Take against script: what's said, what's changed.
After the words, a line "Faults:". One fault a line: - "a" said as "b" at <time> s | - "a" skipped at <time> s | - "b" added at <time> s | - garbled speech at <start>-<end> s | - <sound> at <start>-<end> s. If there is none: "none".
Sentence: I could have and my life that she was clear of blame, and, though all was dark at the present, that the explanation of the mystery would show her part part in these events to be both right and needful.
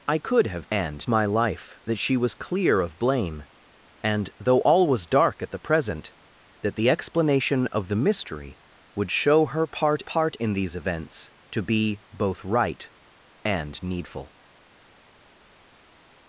I could have and my life that she was clear of blame, and, though all was dark at the present, that the explanation of the mystery would show her part part in these events to be both right and needful.
Faults:
none